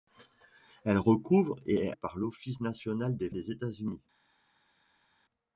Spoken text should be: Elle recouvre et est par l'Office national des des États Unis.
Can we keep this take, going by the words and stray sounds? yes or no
yes